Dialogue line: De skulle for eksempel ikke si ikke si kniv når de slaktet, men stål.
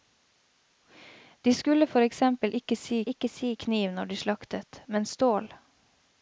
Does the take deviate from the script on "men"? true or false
false